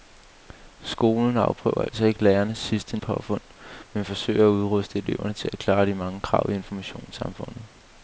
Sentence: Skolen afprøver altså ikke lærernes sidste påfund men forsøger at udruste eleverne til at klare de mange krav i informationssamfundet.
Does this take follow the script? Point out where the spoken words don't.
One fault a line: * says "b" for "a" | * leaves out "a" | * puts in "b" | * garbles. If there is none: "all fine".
all fine